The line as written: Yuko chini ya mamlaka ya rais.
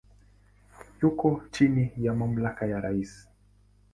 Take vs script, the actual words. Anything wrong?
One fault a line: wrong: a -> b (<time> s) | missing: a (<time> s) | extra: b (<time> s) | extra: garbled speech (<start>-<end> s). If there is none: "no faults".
no faults